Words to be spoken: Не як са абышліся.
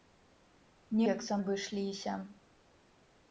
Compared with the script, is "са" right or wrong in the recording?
right